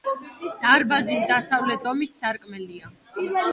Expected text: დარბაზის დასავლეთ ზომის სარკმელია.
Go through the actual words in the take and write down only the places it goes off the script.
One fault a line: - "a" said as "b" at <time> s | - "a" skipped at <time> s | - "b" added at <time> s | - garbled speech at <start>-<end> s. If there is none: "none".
none